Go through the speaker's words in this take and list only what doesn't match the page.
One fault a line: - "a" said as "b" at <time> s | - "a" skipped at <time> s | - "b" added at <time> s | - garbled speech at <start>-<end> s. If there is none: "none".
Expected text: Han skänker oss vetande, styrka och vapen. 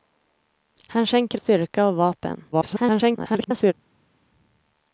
- "oss vetande" skipped at 1.4 s
- garbled speech at 2.5-3.7 s